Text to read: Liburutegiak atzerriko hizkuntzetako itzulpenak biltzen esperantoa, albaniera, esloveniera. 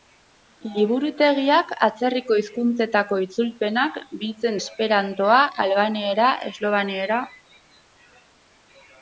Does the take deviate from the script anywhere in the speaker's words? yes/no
no